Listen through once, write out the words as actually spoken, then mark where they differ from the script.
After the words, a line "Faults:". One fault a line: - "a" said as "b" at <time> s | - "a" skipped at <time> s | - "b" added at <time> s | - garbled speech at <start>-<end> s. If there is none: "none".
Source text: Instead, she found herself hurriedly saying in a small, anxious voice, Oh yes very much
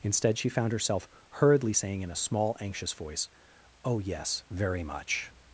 Instead, she found herself hurriedly saying in a small, anxious voice, Oh yes very much
Faults:
none